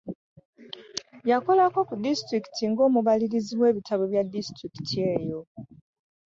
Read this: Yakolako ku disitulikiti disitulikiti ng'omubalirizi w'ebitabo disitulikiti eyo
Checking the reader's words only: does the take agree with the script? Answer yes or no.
no